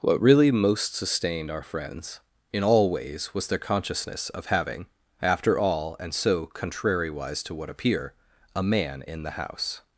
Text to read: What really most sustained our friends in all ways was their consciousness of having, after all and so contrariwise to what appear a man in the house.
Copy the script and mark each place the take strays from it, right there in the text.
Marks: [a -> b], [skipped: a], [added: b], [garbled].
What really most sustained our friends in all ways was their consciousness of having, after all and so contrariwise to what appear a man in the house.